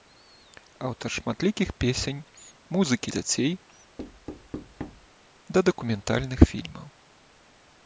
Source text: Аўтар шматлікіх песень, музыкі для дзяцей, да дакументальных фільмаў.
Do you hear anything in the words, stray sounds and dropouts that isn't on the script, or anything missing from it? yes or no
yes